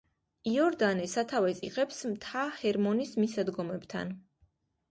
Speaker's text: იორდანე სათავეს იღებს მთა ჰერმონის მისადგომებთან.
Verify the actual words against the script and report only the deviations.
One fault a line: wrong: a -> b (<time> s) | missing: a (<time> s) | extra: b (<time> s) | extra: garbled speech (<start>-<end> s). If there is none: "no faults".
no faults